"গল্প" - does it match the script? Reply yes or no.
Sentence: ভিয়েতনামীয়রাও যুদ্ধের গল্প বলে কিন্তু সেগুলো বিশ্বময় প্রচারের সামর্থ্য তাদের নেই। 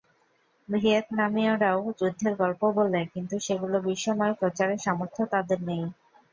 yes